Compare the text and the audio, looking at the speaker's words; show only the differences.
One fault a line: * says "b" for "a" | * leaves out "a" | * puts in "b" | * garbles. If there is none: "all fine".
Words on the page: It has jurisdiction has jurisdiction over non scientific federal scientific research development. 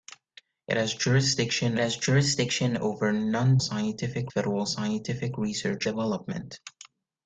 all fine